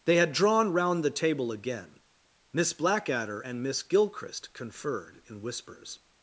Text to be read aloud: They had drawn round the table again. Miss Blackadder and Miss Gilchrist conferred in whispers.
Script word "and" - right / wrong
right